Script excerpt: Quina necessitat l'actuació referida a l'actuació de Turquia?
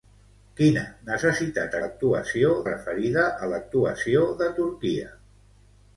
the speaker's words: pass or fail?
pass